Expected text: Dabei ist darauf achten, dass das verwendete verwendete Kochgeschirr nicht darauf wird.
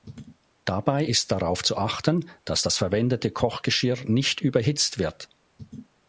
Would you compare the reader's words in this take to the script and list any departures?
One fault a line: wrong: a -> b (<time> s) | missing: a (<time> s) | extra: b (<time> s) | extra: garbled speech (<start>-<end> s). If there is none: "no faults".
extra: zu (1.6 s)
missing: verwendete (3.3 s)
wrong: darauf -> überhitzt (4.4 s)